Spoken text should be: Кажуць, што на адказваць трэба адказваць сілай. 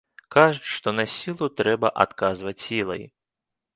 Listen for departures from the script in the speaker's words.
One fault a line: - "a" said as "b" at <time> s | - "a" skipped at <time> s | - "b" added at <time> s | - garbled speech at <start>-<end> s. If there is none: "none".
- "адказваць" said as "сілу" at 1.1 s